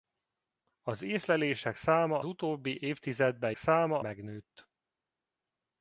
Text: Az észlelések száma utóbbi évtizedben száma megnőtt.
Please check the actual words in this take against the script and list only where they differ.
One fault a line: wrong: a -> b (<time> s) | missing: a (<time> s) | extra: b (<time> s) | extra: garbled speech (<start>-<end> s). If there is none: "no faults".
no faults